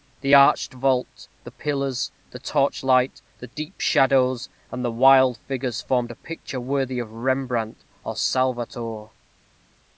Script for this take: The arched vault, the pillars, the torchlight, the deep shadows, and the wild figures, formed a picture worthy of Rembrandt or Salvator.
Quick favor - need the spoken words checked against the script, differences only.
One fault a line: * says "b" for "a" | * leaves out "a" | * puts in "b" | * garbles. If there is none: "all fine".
all fine